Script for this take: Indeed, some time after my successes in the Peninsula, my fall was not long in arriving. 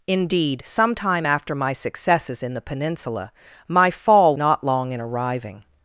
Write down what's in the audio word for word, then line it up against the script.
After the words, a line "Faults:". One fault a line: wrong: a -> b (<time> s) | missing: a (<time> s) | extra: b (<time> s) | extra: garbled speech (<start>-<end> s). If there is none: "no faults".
Indeed, some time after my successes in the Peninsula, my fall not long in arriving.
Faults:
missing: was (4.4 s)